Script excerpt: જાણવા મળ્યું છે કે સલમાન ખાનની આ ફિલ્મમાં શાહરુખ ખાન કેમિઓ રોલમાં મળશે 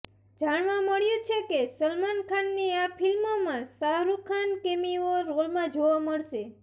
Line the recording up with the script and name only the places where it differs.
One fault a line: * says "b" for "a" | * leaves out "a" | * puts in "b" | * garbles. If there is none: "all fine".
* puts in "જોવા"